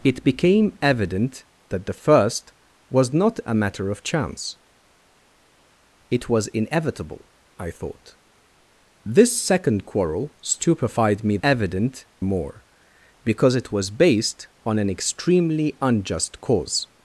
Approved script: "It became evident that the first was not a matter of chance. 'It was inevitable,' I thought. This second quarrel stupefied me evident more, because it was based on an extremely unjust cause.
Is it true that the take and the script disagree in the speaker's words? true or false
false